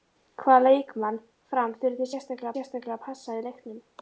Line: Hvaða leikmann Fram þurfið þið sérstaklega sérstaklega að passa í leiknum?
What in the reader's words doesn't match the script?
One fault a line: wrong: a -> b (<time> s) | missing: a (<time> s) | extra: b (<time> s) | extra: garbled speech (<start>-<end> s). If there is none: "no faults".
no faults